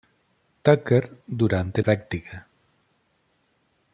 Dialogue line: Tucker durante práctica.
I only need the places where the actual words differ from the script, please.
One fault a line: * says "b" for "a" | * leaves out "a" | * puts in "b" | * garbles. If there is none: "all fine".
all fine